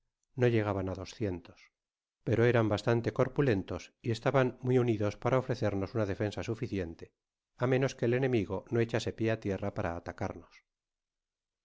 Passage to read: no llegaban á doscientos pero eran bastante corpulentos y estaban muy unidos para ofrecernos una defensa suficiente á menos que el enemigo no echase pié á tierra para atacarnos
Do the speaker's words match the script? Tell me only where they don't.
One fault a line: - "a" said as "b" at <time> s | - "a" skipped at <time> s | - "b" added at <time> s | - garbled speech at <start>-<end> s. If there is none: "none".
none